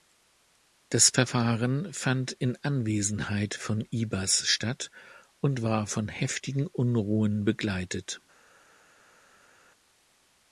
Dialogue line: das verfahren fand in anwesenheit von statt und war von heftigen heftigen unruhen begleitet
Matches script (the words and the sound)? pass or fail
fail